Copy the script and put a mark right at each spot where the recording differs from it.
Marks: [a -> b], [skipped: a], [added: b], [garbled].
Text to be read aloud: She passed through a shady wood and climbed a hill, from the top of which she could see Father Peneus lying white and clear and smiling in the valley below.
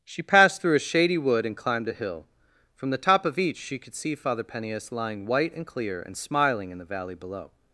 She passed through a shady wood and climbed a hill, from the top of [which -> each] she could see Father Peneus lying white and clear and smiling in the valley below.